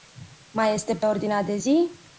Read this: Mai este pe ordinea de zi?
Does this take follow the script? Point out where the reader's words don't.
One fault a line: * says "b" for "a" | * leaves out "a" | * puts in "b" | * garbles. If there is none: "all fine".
all fine